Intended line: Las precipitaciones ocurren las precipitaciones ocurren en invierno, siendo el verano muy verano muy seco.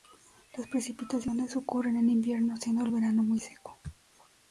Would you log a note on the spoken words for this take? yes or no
yes